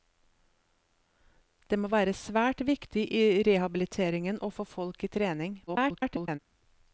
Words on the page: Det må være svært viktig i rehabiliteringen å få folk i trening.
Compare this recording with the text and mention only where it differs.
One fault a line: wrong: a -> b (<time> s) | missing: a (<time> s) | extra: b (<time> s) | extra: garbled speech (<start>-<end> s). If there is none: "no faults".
extra: garbled speech (5.7-6.4 s)